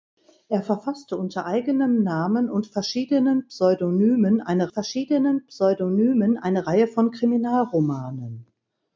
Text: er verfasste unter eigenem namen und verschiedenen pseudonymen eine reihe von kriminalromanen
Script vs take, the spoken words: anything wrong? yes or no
yes